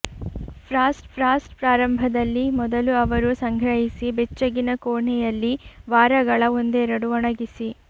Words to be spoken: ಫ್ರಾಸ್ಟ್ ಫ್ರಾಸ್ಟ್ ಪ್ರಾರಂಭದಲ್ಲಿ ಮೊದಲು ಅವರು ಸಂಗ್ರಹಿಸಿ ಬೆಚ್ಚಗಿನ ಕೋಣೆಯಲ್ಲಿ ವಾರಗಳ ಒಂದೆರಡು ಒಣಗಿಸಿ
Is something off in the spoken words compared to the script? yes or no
no